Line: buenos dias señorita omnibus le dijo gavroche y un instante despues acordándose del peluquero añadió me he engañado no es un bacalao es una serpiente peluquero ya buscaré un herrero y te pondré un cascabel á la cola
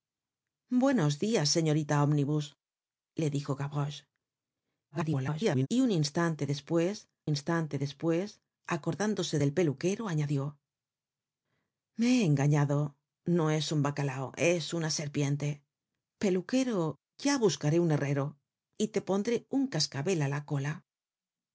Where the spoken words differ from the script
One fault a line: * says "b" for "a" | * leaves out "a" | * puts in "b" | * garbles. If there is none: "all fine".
* garbles
* puts in "instante despues"